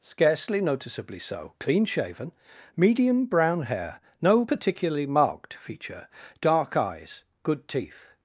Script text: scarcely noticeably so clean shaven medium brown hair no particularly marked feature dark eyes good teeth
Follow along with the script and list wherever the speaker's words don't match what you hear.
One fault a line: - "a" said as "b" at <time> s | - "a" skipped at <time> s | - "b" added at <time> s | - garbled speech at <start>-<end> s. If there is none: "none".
none